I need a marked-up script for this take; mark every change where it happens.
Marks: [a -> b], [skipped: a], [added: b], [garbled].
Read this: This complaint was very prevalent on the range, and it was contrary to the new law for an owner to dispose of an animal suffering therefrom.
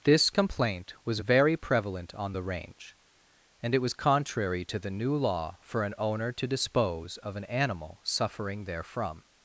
This complaint was very prevalent on the range, and it was contrary to the new law for an owner to dispose of an animal suffering therefrom.